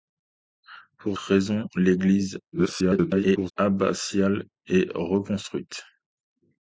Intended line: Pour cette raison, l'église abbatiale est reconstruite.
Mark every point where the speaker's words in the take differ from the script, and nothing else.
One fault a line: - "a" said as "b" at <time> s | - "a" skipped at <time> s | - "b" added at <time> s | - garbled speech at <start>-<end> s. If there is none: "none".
- "cette" skipped at 1.2 s
- garbled speech at 2.5-3.5 s